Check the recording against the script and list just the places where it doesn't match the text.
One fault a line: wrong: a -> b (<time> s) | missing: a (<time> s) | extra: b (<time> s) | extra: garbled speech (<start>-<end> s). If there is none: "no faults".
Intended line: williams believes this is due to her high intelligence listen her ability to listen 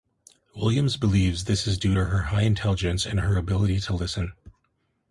wrong: listen -> and (3.0 s)